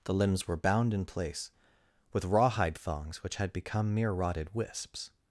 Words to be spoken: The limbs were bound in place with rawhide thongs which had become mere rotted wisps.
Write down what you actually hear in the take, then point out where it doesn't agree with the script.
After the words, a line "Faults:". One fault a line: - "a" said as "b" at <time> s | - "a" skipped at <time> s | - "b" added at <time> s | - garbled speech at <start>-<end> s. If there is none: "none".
The limbs were bound in place with rawhide thongs which had become mere rotted wisps.
Faults:
none